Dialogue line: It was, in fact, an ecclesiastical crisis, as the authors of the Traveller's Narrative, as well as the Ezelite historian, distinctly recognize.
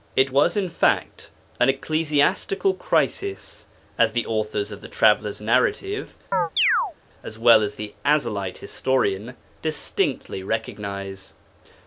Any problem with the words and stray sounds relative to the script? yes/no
yes